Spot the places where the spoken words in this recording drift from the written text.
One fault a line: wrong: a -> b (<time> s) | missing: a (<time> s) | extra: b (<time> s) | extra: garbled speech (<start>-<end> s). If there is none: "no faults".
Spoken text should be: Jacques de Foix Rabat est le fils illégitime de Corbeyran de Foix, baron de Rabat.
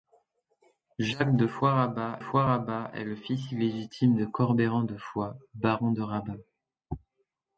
extra: Foix Rabat (2.2 s)